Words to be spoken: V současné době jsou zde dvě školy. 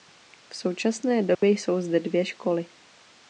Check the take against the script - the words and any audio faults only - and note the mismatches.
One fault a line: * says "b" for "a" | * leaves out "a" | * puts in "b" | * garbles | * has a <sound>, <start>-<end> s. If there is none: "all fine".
* has a dropout, 1.3-1.4 s